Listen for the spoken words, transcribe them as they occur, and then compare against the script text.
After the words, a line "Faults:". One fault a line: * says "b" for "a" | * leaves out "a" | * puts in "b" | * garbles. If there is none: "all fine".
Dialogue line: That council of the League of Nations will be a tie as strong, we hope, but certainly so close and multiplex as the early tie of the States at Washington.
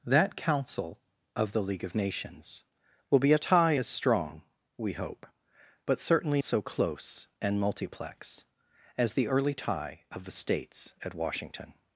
That council of the League of Nations will be a tie as strong, we hope, but certainly so close and multiplex as the early tie of the States at Washington.
Faults:
all fine